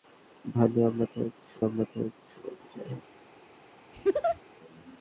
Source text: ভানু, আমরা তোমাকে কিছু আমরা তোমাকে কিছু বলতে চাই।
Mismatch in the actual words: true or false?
false